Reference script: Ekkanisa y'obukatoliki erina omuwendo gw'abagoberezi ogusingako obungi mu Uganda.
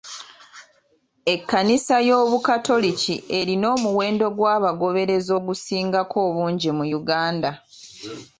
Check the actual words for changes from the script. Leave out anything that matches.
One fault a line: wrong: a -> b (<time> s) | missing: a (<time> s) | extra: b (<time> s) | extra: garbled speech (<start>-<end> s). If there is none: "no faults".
no faults